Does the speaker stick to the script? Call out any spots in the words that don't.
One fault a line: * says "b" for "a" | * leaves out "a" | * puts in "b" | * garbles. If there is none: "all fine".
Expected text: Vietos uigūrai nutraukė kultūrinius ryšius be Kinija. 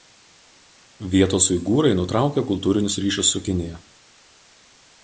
* says "su" for "be"